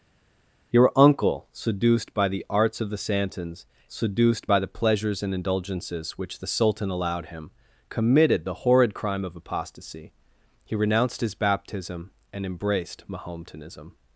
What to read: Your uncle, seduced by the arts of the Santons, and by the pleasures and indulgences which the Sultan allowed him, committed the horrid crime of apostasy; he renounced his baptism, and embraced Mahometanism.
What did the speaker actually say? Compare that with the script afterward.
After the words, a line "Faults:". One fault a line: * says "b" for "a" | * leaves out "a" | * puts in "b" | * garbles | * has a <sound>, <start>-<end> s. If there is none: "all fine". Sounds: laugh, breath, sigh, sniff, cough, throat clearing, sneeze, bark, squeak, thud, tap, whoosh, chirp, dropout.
Your uncle, seduced by the arts of the Santons, seduced by the pleasures and indulgences which the Sultan allowed him, committed the horrid crime of apostasy; he renounced his baptism, and embraced Mahometanism.
Faults:
* says "seduced" for "and"